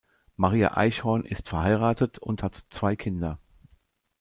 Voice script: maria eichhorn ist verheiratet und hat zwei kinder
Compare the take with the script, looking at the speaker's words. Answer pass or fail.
pass